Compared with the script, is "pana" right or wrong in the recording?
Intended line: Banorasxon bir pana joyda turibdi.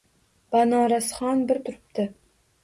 wrong